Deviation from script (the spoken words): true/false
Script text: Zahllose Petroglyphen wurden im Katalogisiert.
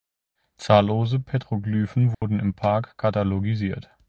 true